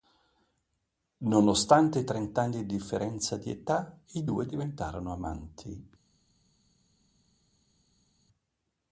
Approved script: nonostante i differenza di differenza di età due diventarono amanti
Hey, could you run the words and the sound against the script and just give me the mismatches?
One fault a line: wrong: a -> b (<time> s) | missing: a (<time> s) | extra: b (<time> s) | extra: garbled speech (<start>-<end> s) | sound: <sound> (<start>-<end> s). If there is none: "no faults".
wrong: differenza -> trent'anni (2.0 s)
extra: i (4.1 s)